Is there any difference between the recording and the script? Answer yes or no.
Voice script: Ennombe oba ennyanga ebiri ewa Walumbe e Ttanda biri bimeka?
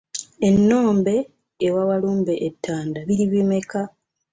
yes